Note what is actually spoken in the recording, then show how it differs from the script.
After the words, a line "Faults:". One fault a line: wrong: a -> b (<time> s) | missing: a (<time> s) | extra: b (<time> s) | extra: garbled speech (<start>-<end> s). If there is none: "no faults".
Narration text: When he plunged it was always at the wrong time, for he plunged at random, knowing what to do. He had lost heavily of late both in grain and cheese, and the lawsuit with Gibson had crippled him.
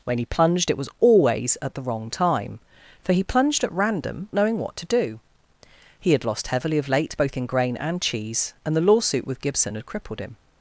When he plunged it was always at the wrong time, for he plunged at random, knowing what to do. He had lost heavily of late both in grain and cheese, and the lawsuit with Gibson had crippled him.
Faults:
no faults